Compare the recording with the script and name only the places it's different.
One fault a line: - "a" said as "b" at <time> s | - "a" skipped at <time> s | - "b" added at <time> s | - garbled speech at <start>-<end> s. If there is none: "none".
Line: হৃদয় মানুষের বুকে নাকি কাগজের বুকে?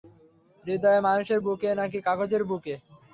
none